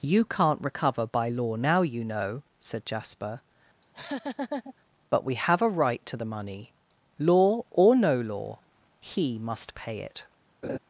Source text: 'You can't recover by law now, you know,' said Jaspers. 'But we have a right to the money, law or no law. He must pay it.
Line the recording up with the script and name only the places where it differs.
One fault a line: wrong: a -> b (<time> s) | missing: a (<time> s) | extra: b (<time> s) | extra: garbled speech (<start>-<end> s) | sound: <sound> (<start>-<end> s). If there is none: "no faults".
wrong: Jaspers -> Jasper (2.9 s)
sound: laugh (3.8-4.7 s)
sound: laugh (10.6-10.8 s)